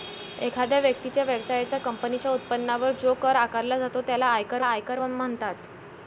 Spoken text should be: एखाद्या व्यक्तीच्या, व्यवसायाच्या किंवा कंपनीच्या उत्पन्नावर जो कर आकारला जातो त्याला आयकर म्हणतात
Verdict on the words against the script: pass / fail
fail